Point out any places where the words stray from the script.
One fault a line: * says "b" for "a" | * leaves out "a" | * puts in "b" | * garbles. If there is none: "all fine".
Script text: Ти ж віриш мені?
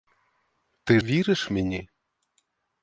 * leaves out "ж"